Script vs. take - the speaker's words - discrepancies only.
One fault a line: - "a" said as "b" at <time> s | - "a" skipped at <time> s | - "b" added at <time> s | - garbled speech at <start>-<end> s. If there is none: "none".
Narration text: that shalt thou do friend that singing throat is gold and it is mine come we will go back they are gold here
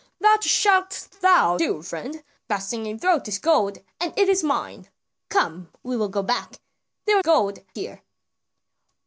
none